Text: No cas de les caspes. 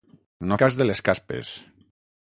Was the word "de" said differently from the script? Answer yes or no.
no